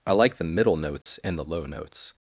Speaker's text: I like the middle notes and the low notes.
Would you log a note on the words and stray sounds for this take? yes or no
yes